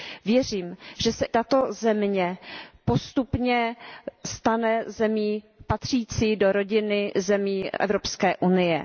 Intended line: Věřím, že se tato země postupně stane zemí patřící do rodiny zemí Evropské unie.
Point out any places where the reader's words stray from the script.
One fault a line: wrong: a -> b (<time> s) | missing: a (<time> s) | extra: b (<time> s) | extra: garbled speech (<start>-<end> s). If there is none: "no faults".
no faults